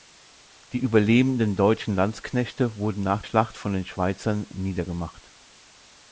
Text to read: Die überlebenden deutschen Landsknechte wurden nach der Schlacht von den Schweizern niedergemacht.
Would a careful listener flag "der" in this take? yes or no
yes